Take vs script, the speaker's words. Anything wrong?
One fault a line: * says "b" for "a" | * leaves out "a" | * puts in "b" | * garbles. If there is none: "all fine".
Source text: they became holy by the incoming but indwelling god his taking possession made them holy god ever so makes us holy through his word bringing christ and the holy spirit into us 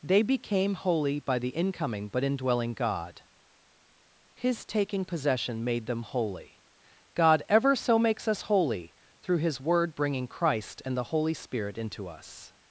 all fine